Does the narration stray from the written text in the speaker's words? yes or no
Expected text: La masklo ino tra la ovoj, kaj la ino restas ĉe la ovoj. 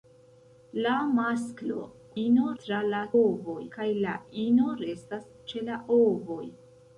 no